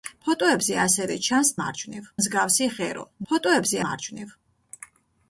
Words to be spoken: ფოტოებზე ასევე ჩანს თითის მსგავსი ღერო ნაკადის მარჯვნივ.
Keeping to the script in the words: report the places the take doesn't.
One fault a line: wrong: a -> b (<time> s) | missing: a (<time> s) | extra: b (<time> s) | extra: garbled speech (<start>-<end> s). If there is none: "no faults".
wrong: თითის -> მარჯვნივ (1.6 s)
wrong: ნაკადის -> ფოტოებზე (3.3 s)